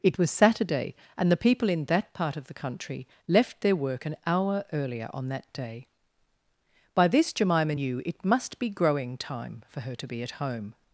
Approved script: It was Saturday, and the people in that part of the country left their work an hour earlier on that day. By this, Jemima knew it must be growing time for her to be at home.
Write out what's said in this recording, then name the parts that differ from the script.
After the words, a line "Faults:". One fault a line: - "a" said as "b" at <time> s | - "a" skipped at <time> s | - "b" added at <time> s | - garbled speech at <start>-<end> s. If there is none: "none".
It was Saturday, and the people in that part of the country left their work an hour earlier on that day. By this, Jemima knew it must be growing time for her to be at home.
Faults:
none